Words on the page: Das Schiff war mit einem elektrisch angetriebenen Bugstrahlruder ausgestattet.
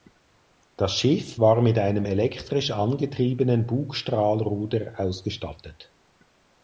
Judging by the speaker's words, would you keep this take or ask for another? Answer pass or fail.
pass